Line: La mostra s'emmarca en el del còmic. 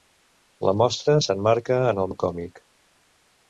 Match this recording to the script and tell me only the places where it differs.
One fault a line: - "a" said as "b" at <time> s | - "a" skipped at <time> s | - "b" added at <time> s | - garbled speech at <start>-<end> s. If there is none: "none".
none